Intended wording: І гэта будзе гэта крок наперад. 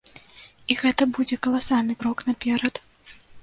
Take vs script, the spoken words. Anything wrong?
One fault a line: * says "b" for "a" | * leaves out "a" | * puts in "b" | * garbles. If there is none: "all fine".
* says "каласальны" for "гэта"